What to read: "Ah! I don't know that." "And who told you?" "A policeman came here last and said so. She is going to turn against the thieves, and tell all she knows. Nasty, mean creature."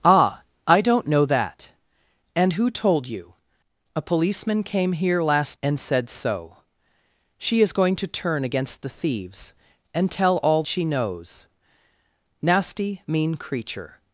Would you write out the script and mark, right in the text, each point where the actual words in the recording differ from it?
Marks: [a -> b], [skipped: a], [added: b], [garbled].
"Ah! I don't know that." "And who told you?" "A policeman came here last and said so. She is going to turn against the thieves, and tell all she knows. Nasty, mean creature."